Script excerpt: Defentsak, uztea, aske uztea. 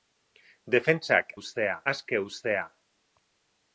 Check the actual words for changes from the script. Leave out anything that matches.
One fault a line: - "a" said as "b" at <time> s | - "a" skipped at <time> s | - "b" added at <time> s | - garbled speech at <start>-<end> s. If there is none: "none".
none